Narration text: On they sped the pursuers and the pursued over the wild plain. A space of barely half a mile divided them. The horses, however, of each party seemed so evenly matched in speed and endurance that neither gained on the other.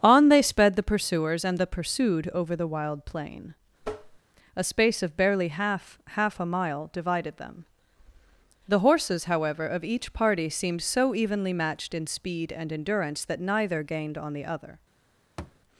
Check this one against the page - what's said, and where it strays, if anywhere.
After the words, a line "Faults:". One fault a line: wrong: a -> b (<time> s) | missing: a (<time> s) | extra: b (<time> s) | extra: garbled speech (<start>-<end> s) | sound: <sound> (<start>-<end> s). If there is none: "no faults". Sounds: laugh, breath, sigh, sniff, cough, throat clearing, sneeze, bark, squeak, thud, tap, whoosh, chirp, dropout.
On they sped the pursuers and the pursued over the wild plain. A space of barely half half a mile divided them. The horses, however, of each party seemed so evenly matched in speed and endurance that neither gained on the other.
Faults:
sound: tap (3.8-4.2 s)
extra: half (6.1 s)
sound: thud (15.4-15.6 s)